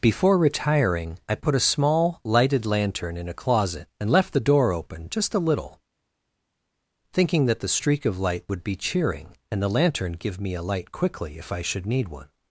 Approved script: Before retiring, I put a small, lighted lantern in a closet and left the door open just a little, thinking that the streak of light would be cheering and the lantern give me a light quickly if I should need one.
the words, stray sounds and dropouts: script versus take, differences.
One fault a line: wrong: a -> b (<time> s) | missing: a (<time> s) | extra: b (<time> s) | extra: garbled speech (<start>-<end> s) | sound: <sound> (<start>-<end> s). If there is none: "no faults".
no faults